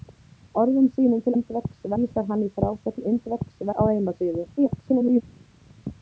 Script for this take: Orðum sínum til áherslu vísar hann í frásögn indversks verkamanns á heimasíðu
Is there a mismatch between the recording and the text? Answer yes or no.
yes